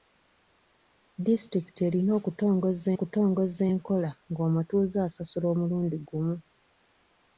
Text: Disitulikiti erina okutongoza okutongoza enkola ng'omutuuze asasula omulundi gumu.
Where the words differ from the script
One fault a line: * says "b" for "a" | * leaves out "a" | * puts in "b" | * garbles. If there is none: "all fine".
all fine